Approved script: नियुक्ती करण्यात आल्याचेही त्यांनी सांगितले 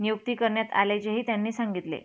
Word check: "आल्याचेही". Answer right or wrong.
right